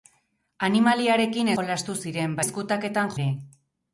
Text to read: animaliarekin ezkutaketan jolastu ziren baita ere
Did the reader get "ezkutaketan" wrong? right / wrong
wrong